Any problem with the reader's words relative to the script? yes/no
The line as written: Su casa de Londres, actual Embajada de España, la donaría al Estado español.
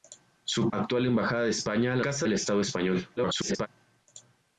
yes